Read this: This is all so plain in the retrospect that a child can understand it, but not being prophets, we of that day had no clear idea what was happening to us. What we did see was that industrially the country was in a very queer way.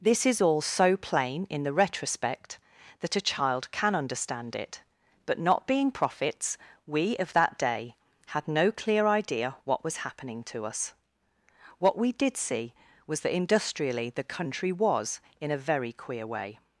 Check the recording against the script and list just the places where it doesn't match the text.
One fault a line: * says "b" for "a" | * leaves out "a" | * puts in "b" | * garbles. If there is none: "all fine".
all fine